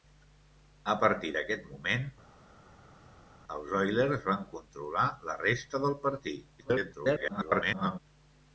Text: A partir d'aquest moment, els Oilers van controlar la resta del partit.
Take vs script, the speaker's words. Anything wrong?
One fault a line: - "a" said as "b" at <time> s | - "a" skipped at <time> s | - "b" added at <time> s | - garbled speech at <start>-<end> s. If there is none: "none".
- garbled speech at 6.6-8.0 s